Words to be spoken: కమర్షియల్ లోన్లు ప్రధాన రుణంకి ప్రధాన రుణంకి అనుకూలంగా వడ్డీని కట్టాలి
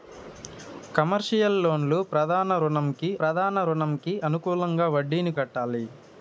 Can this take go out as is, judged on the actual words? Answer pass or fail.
pass